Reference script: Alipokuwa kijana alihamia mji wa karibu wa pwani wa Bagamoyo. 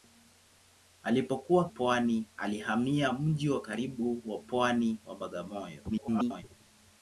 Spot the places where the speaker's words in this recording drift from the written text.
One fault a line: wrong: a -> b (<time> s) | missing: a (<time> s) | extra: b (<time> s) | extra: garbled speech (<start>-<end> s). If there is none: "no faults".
wrong: kijana -> pwani (1.7 s)
extra: garbled speech (5.9-6.4 s)